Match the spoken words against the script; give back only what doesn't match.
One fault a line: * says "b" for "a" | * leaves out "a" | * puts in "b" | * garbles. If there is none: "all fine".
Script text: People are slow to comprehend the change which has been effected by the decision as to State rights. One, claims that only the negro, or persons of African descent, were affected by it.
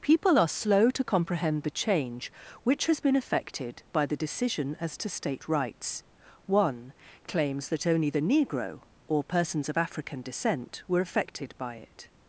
all fine